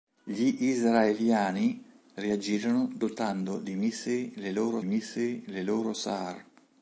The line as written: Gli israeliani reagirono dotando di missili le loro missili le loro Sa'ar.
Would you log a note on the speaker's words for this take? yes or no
no